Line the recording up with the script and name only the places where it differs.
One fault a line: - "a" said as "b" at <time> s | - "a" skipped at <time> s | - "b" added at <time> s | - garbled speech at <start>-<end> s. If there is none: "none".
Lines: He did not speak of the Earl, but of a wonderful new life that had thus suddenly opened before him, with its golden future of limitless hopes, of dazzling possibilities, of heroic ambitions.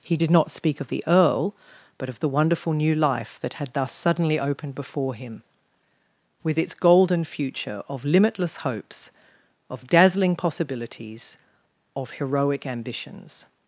- "a" said as "the" at 2.2 s